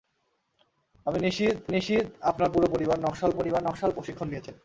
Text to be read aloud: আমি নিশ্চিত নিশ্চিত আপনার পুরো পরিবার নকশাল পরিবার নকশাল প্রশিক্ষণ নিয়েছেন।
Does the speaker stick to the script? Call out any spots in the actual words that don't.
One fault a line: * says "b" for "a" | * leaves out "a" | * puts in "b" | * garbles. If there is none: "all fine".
all fine